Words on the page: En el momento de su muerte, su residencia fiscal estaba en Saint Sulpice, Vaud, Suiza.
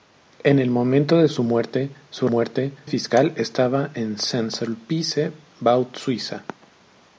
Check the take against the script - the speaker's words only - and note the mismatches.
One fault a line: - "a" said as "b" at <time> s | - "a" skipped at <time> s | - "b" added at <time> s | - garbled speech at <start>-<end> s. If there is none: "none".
- "residencia" said as "muerte" at 2.3 s